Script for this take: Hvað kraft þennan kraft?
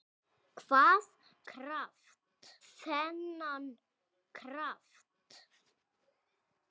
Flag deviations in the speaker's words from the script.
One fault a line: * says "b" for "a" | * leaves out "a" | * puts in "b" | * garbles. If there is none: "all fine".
all fine